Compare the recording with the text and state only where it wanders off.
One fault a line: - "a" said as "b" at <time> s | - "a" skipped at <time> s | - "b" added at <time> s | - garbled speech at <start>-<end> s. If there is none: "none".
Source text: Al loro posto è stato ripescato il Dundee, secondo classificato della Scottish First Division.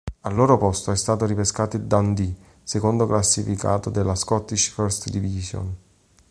none